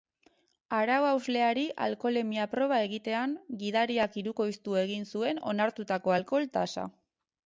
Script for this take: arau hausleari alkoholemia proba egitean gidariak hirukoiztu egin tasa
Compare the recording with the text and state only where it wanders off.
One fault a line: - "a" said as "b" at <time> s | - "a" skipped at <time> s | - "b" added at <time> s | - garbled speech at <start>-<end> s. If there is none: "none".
- "zuen onartutako alkohol" added at 5.1 s